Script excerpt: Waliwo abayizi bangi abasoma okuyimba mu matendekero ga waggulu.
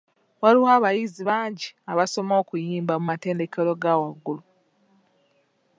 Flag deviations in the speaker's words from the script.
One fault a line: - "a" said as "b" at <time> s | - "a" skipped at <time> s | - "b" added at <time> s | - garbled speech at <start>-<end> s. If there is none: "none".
none